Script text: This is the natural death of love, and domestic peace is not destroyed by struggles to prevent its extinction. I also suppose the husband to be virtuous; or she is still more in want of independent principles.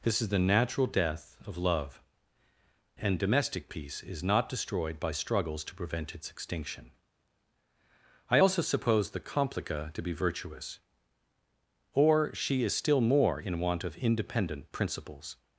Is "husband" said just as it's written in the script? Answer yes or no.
no